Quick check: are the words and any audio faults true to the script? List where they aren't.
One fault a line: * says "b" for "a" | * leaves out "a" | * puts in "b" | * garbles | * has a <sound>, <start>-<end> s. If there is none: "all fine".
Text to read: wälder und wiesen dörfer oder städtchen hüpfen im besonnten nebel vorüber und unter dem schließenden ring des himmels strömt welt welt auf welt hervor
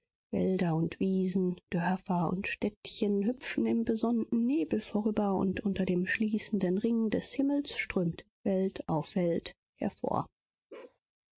* says "und" for "oder"
* leaves out "welt"
* has a bark, 10.7-11.0 s